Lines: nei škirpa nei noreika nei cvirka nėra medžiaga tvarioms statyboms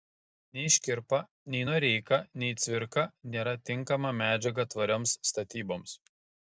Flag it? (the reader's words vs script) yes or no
yes